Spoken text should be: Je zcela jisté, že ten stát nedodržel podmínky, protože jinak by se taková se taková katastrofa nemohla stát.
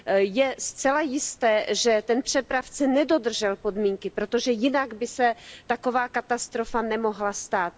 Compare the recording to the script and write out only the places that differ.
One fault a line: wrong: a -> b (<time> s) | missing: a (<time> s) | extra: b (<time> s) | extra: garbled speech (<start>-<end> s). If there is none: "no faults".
wrong: stát -> přepravce (2.2 s)
missing: se taková (6.1 s)